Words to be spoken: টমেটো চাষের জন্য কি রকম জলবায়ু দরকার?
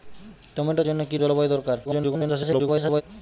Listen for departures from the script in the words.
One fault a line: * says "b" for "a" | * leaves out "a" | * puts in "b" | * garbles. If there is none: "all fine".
* leaves out "চাষের"
* leaves out "রকম"
* garbles